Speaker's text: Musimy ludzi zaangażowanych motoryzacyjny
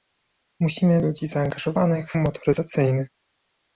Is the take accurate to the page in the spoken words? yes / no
yes